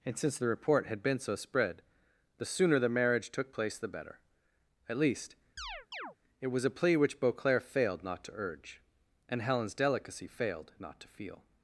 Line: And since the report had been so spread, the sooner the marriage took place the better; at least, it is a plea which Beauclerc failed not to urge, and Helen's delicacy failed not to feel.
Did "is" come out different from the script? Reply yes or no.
yes